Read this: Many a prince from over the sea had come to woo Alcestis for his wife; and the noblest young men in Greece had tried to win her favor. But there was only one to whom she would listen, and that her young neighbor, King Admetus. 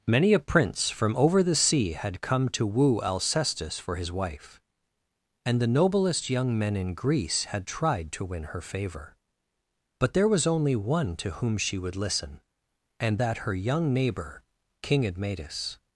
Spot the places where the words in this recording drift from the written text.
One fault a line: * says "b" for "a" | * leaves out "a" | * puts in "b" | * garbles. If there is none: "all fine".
all fine